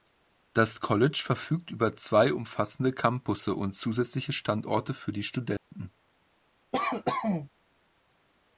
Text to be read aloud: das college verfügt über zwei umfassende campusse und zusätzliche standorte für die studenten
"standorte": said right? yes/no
yes